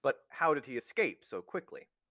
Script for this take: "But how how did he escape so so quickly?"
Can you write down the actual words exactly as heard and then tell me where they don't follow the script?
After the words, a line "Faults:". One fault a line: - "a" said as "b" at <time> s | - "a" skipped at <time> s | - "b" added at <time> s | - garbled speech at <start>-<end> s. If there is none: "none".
"But how did he escape so quickly?"
Faults:
- "how" skipped at 0.5 s
- "so" skipped at 1.4 s